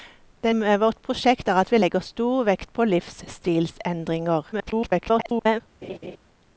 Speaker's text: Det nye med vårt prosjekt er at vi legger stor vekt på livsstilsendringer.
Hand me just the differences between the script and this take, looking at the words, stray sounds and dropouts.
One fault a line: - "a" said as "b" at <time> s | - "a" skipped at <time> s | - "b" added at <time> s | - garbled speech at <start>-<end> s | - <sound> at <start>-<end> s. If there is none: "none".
- "nye" skipped at 0.5 s
- garbled speech at 4.5-5.6 s
- laugh at 5.8-6.2 s